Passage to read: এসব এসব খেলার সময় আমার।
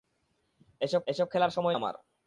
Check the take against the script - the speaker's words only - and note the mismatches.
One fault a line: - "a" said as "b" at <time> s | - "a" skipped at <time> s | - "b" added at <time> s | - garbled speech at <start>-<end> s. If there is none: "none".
none